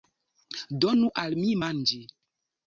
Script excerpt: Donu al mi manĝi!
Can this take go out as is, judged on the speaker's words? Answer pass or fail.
pass